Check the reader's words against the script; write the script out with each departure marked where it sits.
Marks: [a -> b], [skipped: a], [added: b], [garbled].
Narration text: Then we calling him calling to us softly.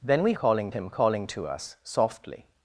Then we calling him calling to us softly.